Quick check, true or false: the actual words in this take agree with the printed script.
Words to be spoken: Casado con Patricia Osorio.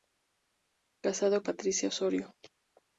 false